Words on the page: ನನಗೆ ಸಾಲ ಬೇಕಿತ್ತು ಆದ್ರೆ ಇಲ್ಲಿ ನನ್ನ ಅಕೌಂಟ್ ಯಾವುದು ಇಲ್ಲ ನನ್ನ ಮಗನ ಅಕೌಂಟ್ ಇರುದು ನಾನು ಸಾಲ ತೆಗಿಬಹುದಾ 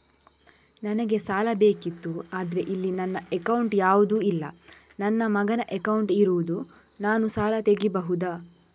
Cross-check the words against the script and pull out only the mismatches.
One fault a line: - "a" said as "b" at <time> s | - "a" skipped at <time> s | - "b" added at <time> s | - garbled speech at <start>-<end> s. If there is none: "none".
none